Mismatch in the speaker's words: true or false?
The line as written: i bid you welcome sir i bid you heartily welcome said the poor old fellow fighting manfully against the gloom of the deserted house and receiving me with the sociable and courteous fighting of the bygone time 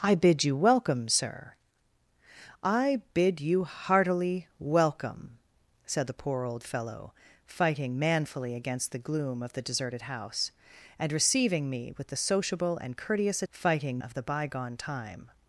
false